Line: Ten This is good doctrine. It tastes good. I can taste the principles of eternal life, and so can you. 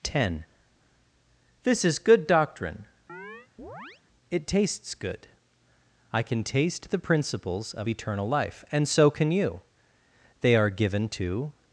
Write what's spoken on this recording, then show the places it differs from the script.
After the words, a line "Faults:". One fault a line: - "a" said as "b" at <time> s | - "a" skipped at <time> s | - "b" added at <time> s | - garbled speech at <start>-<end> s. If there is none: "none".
Ten This is good doctrine. It tastes good. I can taste the principles of eternal life, and so can you. They are given to
Faults:
- "They are given to" added at 10.4 s